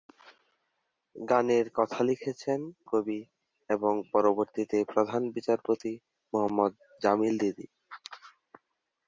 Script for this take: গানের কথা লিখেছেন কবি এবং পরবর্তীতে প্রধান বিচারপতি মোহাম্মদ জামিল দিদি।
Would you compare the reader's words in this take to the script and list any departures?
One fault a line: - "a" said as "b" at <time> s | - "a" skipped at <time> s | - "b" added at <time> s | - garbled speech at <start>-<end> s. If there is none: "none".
none